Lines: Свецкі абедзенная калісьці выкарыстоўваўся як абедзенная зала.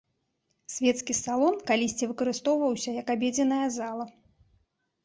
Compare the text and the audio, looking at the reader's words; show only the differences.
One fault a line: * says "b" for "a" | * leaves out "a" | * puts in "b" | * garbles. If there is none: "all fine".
* says "салон" for "абедзенная"